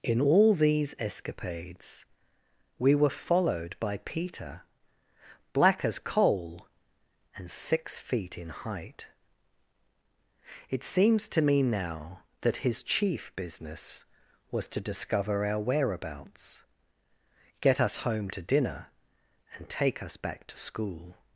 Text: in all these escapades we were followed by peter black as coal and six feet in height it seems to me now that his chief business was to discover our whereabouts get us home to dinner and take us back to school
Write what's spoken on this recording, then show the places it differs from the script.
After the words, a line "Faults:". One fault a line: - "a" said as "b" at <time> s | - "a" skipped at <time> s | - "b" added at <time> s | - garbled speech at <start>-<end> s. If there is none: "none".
in all these escapades we were followed by peter black as coal and six feet in height it seems to me now that his chief business was to discover our whereabouts get us home to dinner and take us back to school
Faults:
none